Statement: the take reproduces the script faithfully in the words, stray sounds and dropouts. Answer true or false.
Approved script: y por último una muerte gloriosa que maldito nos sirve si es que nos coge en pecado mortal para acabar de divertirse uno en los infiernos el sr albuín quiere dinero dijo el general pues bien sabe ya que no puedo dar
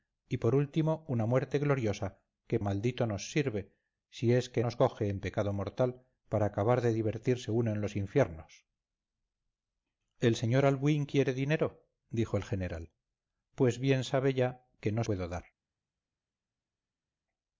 true